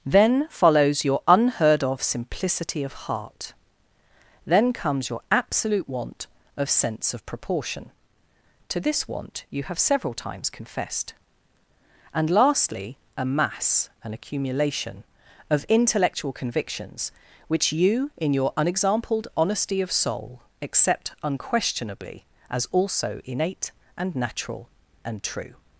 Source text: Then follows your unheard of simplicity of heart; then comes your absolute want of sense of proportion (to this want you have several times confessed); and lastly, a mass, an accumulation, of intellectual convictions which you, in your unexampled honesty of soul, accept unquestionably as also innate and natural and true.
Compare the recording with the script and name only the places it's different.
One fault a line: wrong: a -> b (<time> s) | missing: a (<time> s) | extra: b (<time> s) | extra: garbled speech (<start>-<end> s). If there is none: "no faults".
no faults